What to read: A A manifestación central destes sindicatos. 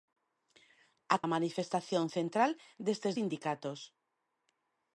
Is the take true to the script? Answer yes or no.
yes